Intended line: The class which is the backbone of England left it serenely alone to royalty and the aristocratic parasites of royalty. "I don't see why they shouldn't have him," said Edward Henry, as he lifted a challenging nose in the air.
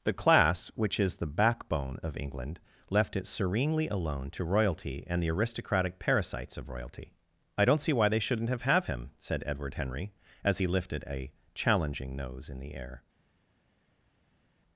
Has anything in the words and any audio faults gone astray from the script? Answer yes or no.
yes